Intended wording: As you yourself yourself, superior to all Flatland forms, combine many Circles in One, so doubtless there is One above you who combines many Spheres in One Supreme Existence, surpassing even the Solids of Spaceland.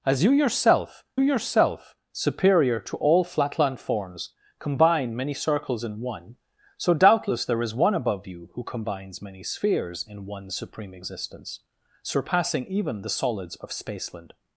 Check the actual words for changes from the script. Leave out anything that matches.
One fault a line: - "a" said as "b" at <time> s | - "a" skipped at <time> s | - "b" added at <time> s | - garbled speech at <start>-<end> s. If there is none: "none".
none